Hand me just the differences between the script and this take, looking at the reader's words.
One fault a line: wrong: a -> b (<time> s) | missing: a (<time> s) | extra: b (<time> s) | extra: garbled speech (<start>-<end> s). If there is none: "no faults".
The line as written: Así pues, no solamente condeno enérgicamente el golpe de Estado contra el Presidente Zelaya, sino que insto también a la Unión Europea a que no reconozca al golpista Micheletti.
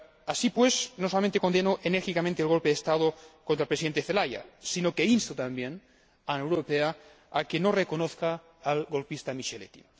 no faults